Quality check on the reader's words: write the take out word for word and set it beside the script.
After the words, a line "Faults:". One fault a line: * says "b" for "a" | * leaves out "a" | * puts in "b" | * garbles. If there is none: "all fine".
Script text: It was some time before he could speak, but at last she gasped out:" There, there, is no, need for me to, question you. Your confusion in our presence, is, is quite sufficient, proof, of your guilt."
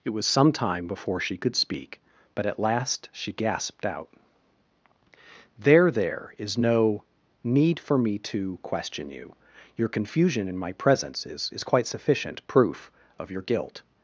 It was some time before she could speak, but at last she gasped out:" There, there, is no, need for me to, question you. Your confusion in my presence, is, is quite sufficient, proof, of your guilt."
Faults:
* says "she" for "he"
* says "my" for "our"